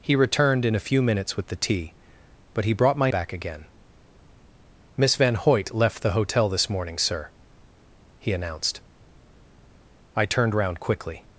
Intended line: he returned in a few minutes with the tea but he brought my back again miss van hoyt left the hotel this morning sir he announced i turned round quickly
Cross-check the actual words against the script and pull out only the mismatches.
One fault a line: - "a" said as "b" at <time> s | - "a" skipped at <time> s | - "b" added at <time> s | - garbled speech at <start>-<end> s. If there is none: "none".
none